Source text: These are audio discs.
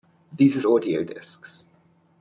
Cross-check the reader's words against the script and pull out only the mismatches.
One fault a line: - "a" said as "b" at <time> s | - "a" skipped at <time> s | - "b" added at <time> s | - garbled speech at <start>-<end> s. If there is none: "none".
none